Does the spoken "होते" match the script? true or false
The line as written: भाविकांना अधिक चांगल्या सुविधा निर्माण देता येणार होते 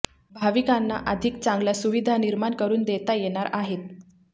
false